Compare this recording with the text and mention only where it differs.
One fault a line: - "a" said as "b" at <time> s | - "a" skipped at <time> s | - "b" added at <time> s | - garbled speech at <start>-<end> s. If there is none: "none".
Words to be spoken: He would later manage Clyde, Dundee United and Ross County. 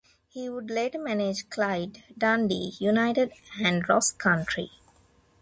none